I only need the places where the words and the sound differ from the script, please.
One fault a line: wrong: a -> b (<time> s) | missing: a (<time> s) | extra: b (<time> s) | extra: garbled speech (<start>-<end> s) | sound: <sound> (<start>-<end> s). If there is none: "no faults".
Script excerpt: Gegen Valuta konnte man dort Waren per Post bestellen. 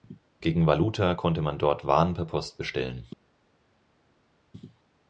no faults